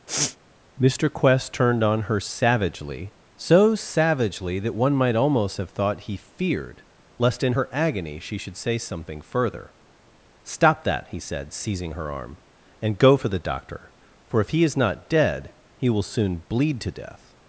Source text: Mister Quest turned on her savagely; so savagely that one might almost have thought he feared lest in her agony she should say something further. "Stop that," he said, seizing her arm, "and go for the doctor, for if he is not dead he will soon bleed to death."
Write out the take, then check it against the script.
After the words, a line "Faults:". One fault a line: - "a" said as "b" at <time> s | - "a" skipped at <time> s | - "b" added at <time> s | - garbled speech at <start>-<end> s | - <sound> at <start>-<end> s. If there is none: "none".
Mister Quest turned on her savagely; so savagely that one might almost have thought he feared lest in her agony she should say something further. "Stop that," he said, seizing her arm, "and go for the doctor, for if he is not dead he will soon bleed to death."
Faults:
- sniff at 0.1-0.4 s